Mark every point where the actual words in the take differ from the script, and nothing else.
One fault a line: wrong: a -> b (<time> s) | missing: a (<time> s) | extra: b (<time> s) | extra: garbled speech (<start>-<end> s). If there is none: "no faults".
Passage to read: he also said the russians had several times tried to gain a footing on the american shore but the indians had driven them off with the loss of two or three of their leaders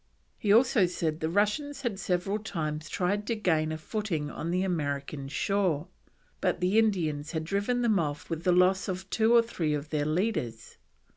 no faults